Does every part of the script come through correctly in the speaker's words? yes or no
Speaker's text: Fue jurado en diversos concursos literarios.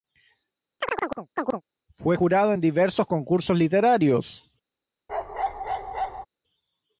yes